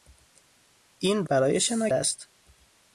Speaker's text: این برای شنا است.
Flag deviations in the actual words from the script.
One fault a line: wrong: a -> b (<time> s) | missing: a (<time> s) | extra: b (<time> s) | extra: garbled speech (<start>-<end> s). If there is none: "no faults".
no faults